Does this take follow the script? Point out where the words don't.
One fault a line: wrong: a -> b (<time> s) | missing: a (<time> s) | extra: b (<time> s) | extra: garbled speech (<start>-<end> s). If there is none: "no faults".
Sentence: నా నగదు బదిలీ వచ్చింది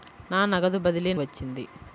no faults